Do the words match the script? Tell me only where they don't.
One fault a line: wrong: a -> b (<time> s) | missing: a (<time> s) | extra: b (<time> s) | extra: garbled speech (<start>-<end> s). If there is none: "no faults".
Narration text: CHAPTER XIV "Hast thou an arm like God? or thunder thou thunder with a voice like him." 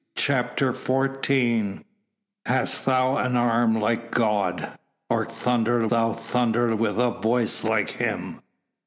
no faults